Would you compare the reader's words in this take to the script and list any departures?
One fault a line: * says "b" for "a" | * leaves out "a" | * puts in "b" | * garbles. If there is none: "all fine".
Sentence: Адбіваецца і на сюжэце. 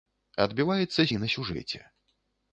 all fine